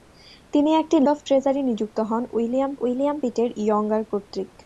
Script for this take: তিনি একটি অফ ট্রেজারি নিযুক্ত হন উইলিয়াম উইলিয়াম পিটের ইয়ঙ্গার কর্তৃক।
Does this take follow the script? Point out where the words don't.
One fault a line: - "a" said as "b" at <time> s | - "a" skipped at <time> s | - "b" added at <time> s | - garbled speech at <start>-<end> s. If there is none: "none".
none